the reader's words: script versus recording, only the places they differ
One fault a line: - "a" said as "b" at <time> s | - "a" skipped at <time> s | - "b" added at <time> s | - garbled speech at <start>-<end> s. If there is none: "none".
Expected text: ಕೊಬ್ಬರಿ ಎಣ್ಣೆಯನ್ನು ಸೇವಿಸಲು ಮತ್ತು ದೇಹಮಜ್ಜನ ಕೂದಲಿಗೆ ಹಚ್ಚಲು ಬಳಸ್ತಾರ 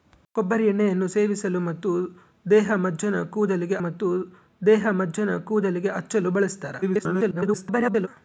- "ಮತ್ತು ದೇಹಮಜ್ಜನ ಕೂದಲಿಗೆ" added at 3.8 s
- garbled speech at 6.8-8.1 s